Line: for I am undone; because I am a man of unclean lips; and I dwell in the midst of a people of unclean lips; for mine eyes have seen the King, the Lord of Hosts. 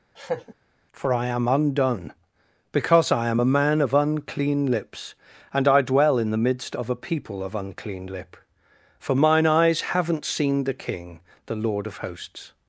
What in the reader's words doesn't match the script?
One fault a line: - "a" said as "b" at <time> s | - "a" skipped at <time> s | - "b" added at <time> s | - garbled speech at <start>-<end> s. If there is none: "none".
- "lips" said as "lip" at 8.1 s
- "have" said as "haven't" at 9.8 s